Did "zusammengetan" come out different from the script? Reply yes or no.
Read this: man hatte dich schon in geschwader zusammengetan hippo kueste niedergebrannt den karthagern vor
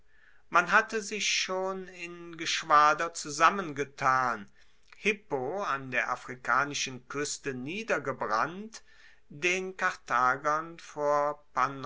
no